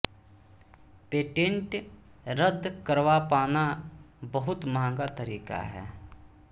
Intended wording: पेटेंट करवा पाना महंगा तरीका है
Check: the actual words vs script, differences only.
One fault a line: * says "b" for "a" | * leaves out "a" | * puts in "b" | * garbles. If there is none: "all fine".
* puts in "रद्द"
* puts in "बहुत"